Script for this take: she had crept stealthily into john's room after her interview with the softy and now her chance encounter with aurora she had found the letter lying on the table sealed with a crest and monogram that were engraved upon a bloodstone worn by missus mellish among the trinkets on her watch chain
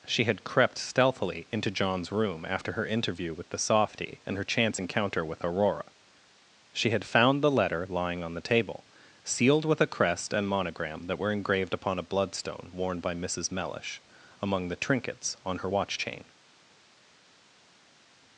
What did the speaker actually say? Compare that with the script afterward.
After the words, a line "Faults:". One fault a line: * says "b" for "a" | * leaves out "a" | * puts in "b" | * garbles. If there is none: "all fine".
she had crept stealthily into john's room after her interview with the softy and her chance encounter with aurora she had found the letter lying on the table sealed with a crest and monogram that were engraved upon a bloodstone worn by missus mellish among the trinkets on her watch chain
Faults:
* leaves out "now"